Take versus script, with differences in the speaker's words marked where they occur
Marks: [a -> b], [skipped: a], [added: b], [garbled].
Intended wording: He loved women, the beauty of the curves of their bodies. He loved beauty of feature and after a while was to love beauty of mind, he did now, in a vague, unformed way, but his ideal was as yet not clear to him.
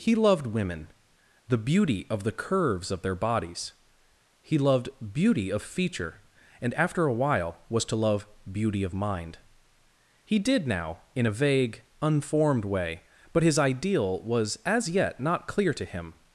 He loved women, the beauty of the curves of their bodies. He loved beauty of feature and after a while was to love beauty of mind, he did now, in a vague, unformed way, but his ideal was as yet not clear to him.